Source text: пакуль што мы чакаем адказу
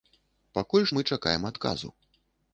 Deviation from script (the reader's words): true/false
true